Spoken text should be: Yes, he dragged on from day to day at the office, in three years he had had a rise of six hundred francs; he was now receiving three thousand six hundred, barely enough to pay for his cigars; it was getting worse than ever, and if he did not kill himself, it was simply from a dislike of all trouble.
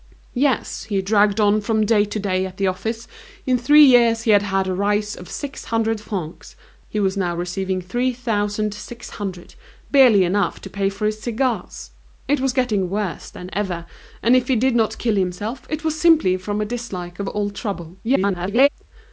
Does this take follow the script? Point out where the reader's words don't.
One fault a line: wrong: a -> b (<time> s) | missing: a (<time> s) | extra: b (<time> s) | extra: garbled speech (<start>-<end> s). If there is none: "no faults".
extra: garbled speech (18.0-18.7 s)